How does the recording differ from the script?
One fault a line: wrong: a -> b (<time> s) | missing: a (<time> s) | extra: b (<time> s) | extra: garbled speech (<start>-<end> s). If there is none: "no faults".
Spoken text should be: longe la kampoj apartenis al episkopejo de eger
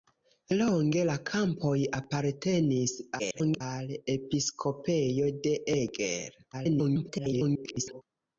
extra: garbled speech (3.2-3.6 s)
extra: garbled speech (6.5-8.0 s)